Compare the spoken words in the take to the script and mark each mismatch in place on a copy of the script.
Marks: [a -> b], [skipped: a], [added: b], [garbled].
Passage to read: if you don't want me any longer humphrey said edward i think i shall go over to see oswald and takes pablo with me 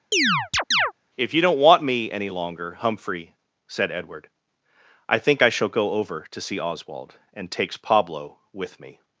if you don't want me any longer humphrey said edward i think i shall go over to see oswald and takes pablo with me